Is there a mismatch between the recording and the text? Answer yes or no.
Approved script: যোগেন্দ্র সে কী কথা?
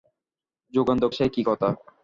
no